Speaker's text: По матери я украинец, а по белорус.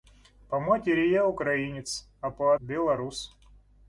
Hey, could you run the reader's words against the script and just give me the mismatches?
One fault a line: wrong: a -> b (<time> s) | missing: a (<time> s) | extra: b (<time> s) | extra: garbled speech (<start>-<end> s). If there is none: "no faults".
no faults